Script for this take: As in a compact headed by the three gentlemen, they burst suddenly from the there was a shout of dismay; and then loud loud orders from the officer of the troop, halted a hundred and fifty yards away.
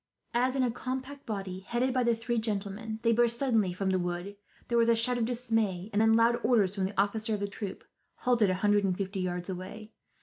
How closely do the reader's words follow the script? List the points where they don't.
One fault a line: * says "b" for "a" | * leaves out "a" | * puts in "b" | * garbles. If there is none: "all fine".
* puts in "body"
* puts in "wood"
* leaves out "loud"